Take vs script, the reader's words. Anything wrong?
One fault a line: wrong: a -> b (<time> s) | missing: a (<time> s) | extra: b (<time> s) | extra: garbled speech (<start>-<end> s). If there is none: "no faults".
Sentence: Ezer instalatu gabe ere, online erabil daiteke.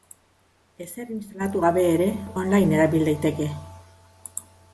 no faults